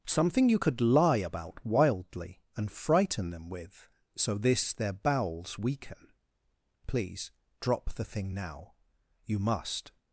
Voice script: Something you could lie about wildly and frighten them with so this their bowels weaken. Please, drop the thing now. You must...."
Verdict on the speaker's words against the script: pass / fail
pass